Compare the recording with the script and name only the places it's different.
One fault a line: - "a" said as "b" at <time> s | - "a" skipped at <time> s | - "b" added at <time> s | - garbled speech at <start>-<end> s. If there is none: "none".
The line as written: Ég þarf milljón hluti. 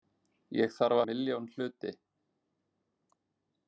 none